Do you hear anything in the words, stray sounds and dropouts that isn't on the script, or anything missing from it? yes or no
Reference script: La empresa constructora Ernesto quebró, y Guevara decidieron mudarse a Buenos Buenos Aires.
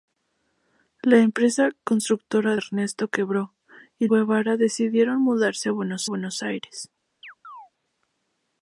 yes